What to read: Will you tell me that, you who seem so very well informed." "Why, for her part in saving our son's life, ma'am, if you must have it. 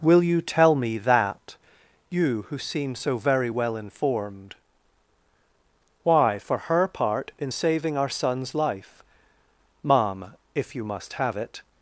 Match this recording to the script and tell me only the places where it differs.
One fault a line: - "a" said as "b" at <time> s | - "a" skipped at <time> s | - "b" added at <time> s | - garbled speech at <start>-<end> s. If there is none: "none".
none